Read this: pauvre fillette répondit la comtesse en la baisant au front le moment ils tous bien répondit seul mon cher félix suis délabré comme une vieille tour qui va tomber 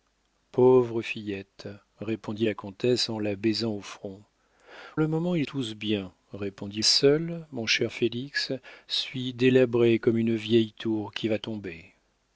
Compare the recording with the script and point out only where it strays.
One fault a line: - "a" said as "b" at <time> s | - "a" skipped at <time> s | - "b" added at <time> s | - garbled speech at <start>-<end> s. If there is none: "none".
none